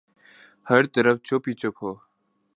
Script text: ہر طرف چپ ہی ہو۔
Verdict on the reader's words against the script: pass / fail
fail